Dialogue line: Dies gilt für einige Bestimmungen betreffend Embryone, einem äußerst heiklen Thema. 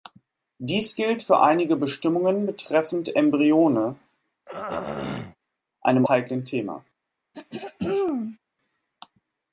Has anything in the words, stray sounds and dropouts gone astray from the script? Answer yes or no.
yes